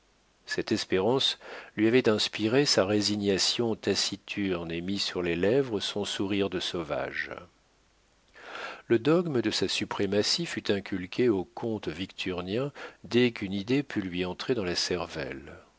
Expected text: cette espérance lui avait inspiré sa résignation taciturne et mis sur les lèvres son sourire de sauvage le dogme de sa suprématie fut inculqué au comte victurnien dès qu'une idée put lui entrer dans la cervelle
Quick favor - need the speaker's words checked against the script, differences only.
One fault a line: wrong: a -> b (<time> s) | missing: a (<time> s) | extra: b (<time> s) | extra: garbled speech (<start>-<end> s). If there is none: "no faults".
no faults